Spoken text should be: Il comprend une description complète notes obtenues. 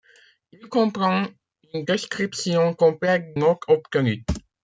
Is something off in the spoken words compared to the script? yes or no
no